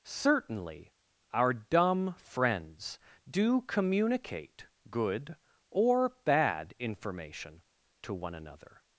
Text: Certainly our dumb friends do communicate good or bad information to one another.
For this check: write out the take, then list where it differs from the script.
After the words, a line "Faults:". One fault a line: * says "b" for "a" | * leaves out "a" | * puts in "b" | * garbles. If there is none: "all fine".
Certainly our dumb friends do communicate good or bad information to one another.
Faults:
all fine